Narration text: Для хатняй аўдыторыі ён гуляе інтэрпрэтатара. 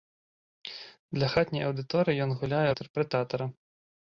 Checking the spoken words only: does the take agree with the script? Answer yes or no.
yes